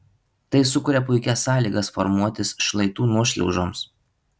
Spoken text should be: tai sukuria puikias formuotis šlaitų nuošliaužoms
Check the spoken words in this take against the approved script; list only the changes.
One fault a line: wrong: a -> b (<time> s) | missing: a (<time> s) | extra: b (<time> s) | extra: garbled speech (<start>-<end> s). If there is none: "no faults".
extra: sąlygas (1.5 s)